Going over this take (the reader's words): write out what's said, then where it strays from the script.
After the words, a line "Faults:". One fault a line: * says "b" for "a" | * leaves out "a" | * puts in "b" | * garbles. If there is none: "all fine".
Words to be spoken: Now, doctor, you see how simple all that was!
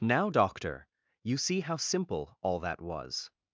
Now, doctor, you see how simple all that was!
Faults:
all fine